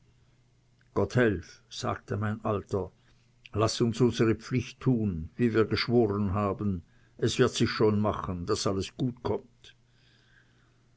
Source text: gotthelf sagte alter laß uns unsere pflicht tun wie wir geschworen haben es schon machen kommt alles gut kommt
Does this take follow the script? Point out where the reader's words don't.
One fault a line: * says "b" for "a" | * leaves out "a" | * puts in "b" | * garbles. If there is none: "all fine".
* puts in "mein"
* puts in "wird sich"
* says "daß" for "kommt"